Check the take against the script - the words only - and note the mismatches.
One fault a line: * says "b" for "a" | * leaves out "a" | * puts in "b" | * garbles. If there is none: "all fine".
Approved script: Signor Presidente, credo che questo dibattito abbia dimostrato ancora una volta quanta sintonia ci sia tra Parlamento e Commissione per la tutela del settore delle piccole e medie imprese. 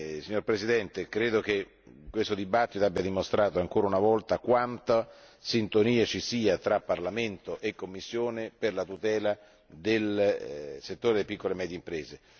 all fine